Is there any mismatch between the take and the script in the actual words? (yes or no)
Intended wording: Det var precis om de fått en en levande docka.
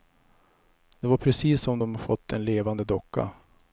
yes